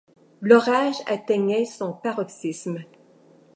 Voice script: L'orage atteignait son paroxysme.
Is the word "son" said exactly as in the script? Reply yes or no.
yes